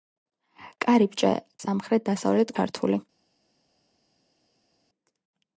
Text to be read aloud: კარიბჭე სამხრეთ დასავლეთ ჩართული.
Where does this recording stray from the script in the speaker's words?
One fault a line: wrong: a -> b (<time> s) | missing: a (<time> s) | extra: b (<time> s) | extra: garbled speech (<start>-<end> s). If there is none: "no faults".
no faults